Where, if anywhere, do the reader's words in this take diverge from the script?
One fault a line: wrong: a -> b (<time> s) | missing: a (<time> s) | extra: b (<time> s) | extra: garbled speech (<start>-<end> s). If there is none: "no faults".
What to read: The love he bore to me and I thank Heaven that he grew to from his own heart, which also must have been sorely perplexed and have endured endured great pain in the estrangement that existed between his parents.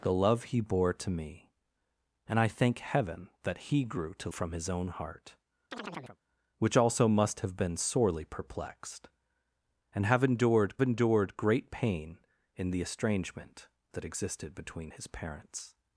no faults